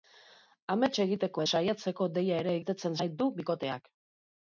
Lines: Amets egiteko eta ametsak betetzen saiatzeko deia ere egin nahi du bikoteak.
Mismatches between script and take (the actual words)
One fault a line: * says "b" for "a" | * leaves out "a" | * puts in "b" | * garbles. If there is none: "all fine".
* leaves out "eta ametsak betetzen"
* says "betetzen" for "egin"